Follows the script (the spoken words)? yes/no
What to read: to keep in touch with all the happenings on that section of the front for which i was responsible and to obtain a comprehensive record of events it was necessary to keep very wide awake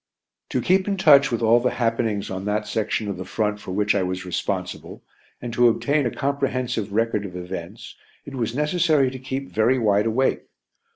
yes